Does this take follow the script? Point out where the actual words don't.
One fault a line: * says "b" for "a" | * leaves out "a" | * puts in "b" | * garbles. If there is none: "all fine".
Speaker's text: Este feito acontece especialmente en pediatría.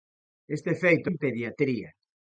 * leaves out "acontece especialmente"